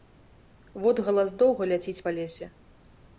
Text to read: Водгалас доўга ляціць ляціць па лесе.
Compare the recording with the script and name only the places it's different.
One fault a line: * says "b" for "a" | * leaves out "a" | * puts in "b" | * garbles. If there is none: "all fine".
* leaves out "ляціць"